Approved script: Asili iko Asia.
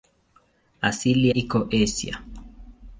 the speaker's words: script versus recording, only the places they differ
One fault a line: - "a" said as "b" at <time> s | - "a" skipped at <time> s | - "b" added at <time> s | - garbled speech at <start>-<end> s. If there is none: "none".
none